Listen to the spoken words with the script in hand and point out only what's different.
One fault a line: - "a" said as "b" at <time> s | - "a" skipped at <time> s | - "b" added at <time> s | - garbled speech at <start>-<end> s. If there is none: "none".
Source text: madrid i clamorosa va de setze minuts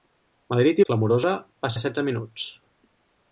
none